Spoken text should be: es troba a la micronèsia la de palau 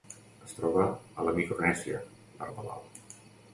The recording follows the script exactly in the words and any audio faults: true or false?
true